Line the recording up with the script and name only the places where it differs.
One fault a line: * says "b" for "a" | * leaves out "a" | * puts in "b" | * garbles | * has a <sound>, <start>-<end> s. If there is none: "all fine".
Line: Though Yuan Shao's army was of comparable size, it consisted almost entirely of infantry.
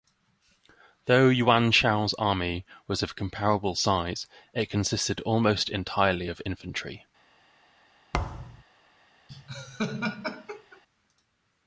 * has a thud, 8.1-8.6 s
* has a laugh, 9.3-10.8 s